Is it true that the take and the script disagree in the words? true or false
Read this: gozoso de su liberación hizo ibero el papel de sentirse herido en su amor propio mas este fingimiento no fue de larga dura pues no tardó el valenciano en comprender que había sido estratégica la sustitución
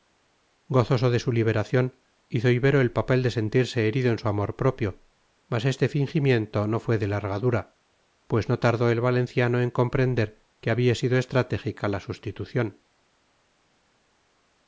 false